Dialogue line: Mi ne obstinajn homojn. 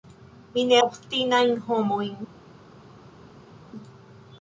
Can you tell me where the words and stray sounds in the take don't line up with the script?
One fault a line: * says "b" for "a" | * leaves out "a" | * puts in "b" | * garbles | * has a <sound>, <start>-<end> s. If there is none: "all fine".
all fine